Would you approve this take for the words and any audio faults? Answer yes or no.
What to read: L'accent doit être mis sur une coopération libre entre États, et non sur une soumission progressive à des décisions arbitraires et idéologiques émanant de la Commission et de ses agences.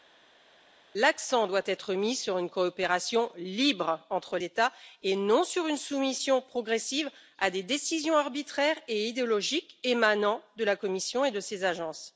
yes